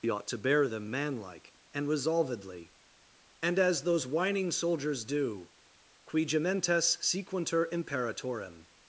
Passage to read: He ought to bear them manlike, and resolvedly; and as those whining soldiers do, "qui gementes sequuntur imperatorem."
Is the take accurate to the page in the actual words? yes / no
yes